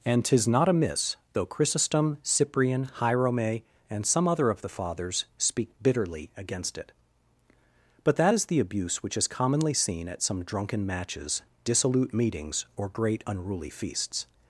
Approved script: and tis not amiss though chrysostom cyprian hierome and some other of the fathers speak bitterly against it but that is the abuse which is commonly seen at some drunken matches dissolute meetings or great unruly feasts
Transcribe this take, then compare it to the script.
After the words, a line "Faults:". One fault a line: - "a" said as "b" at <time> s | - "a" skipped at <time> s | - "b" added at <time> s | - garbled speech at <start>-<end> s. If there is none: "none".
and tis not amiss though chrysostom cyprian hierome and some other of the fathers speak bitterly against it but that is the abuse which is commonly seen at some drunken matches dissolute meetings or great unruly feasts
Faults:
none